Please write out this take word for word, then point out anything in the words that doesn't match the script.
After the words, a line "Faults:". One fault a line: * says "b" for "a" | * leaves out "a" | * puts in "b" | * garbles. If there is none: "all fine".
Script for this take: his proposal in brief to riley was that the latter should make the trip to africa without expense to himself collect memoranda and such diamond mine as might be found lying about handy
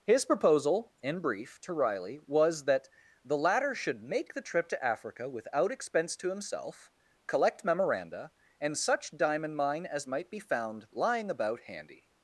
his proposal in brief to riley was that the latter should make the trip to africa without expense to himself collect memoranda and such diamond mine as might be found lying about handy
Faults:
all fine